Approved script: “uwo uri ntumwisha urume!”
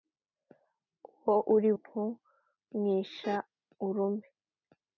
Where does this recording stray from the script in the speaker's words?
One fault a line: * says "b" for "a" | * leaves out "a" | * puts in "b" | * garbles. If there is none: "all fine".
all fine